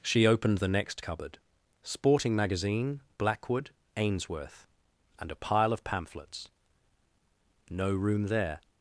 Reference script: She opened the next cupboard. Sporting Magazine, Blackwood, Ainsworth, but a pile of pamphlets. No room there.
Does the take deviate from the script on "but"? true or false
true